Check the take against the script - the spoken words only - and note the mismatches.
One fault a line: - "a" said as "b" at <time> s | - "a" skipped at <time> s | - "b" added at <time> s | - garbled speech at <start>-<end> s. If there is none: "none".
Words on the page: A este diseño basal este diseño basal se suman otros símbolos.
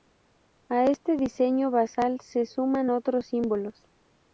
- "este diseño basal" skipped at 2.2 s